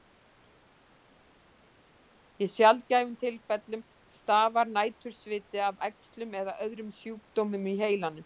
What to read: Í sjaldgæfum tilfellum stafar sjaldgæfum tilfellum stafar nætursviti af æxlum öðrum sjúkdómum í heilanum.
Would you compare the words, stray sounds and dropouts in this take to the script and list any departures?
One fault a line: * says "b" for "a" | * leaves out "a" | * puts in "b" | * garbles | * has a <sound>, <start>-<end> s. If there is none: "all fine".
* leaves out "sjaldgæfum tilfellum stafar"
* puts in "eða"